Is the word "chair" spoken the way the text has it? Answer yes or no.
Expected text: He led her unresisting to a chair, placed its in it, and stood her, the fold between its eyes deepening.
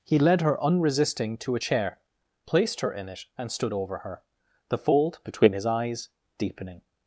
yes